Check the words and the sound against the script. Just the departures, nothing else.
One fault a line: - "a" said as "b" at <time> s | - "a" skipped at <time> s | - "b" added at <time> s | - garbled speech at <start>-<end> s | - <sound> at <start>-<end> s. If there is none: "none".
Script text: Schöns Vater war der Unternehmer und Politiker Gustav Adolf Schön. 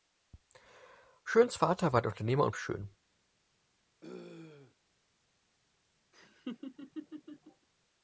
- "Politiker Gustav Adolf" skipped at 2.6 s
- throat clearing at 4.0-4.8 s
- laugh at 6.1-7.7 s